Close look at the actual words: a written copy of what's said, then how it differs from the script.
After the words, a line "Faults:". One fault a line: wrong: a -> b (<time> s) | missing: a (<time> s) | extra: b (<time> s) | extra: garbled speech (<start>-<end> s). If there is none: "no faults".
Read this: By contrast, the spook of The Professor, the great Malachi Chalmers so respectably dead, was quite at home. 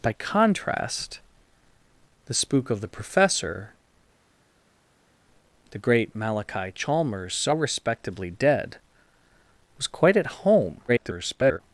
By contrast, the spook of The Professor, the great Malachi Chalmers so respectably dead, was quite at home. [garbled]
Faults:
extra: garbled speech (10.9-11.6 s)